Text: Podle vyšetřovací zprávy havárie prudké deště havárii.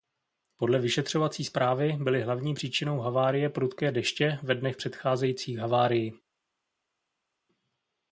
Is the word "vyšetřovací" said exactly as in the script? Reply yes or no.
yes